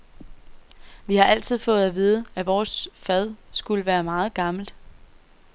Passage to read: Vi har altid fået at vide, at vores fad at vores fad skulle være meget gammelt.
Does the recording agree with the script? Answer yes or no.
no